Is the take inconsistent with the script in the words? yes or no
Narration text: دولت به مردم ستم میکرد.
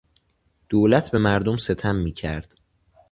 no